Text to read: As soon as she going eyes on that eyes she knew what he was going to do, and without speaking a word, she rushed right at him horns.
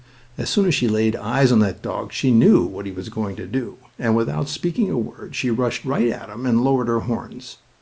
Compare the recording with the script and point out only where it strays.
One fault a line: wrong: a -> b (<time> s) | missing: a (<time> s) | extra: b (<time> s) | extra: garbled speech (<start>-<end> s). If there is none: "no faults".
wrong: going -> laid (0.9 s)
wrong: eyes -> dog (1.8 s)
extra: and lowered her (6.5 s)